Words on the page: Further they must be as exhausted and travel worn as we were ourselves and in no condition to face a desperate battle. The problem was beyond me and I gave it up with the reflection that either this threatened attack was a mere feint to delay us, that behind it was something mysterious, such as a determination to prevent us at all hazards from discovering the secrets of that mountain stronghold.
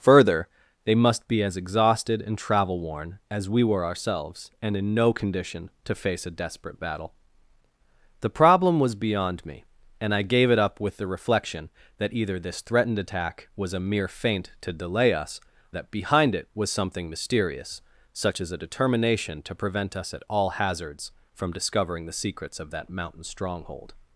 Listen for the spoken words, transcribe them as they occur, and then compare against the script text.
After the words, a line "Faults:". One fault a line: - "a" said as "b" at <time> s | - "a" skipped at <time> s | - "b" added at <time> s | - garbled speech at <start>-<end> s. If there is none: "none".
Further they must be as exhausted and travel worn as we were ourselves and in no condition to face a desperate battle. The problem was beyond me and I gave it up with the reflection that either this threatened attack was a mere feint to delay us, that behind it was something mysterious, such as a determination to prevent us at all hazards from discovering the secrets of that mountain stronghold.
Faults:
none